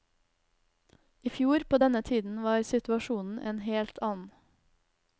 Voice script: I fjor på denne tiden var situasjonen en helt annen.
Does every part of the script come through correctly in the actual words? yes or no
yes